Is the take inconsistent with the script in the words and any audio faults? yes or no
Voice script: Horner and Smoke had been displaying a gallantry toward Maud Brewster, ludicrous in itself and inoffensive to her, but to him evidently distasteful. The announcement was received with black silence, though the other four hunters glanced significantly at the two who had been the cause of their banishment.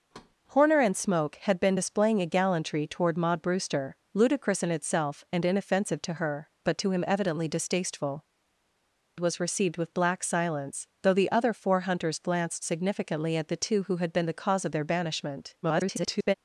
yes